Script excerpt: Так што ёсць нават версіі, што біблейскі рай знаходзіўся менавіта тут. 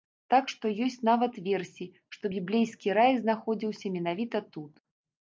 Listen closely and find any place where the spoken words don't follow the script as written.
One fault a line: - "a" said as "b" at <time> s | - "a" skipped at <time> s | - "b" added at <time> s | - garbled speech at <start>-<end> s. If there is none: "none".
none